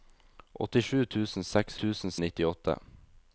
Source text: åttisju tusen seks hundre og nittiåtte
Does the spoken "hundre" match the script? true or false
false